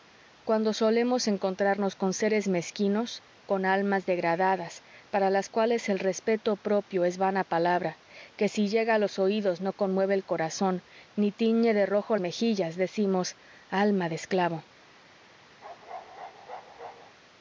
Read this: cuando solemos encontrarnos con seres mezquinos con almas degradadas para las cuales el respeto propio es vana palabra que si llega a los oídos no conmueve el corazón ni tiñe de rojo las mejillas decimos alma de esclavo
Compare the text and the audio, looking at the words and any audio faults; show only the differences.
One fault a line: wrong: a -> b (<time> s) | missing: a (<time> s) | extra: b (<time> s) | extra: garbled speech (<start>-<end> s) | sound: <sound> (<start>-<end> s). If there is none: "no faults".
missing: las (12.2 s)
sound: bark (15.6-17.1 s)